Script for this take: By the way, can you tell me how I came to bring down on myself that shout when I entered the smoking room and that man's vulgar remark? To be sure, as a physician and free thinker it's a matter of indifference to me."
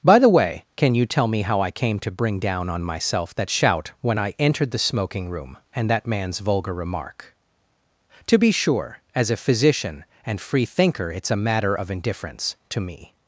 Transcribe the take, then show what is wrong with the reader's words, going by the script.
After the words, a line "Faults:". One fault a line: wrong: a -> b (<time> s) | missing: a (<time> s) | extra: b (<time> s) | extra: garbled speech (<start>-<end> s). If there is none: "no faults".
By the way, can you tell me how I came to bring down on myself that shout when I entered the smoking room and that man's vulgar remark? To be sure, as a physician and free thinker it's a matter of indifference to me."
Faults:
no faults